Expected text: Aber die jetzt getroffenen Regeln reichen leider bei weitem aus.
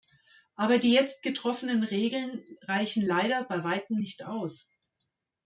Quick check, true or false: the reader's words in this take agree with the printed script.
false